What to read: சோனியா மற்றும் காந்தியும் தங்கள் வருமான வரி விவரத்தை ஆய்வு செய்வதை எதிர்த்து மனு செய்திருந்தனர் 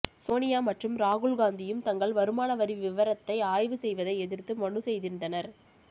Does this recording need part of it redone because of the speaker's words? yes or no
yes